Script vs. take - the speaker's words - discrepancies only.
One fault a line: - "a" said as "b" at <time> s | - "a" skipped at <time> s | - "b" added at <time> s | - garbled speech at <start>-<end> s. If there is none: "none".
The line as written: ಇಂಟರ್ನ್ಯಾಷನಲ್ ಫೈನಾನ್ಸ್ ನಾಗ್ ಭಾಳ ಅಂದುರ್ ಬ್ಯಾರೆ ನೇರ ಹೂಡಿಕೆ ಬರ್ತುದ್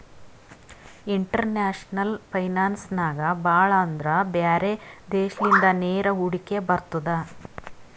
- "ದೇಶಲಿಂದ" added at 5.1 s